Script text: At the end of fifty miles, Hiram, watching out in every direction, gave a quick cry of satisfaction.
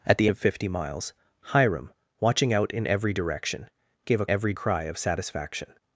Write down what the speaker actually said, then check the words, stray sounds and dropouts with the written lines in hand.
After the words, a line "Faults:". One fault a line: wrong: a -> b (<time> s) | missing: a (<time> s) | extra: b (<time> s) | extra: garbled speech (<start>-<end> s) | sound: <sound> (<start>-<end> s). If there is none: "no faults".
At the of fifty miles, Hiram, watching out in every direction, gave a every cry of satisfaction.
Faults:
missing: end (0.3 s)
wrong: quick -> every (4.3 s)